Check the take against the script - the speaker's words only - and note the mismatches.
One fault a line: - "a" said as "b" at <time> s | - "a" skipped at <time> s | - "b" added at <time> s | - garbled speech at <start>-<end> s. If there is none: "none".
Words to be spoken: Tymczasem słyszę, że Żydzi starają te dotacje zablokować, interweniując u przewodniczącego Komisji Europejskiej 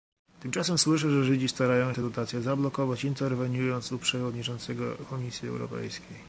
none